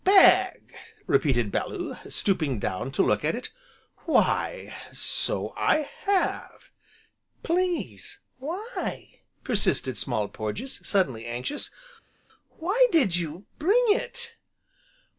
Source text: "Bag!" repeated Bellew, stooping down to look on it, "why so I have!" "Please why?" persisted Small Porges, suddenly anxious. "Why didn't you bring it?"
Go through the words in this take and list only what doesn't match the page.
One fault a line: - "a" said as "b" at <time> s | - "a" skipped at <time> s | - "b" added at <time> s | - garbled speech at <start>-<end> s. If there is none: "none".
- "on" said as "at" at 3.2 s
- "didn't" said as "did" at 12.9 s